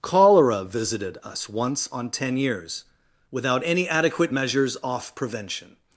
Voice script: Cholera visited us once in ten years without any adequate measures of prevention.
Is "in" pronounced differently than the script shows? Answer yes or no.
yes